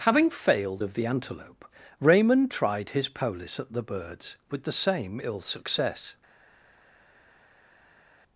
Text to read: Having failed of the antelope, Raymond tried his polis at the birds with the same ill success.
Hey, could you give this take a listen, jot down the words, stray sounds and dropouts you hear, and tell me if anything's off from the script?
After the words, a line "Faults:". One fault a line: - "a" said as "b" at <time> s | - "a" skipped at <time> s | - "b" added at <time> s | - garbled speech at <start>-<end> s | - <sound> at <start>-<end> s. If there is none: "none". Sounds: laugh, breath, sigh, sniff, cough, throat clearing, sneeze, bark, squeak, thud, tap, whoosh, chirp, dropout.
Having failed of the antelope, Raymond tried his polis at the birds with the same ill success.
Faults:
none